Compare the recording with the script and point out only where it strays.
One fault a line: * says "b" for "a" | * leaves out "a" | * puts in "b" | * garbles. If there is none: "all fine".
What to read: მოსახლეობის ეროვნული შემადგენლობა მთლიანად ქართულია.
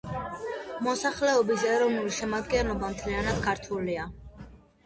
all fine